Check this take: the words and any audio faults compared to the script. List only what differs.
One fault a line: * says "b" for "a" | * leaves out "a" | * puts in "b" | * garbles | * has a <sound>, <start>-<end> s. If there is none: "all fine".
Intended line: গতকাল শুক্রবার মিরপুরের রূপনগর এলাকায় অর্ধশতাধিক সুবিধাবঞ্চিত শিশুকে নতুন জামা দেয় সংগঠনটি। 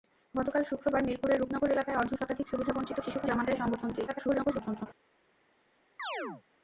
* leaves out "নতুন"
* garbles
* has a chirp, 6.0-6.4 s